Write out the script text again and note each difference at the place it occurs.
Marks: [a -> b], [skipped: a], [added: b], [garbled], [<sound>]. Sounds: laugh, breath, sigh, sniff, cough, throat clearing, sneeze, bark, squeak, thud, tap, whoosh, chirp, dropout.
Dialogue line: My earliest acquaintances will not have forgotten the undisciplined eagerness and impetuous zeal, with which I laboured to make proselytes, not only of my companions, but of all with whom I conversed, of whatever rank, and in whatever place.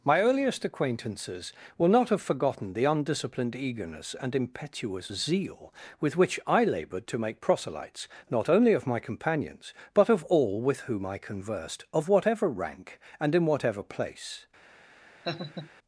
My earliest acquaintances will not have forgotten the undisciplined eagerness and impetuous zeal, with which I laboured to make proselytes, not only of my companions, but of all with whom I conversed, of whatever rank, and in whatever place. [laugh]